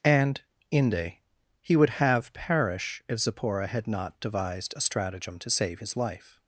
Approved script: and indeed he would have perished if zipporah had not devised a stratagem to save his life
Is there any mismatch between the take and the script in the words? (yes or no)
yes